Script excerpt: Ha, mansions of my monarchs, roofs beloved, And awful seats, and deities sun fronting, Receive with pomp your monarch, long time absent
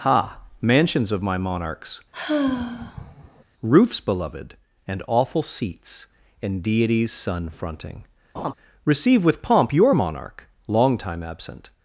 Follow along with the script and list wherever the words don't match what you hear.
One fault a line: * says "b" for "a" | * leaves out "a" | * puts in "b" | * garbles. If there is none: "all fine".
all fine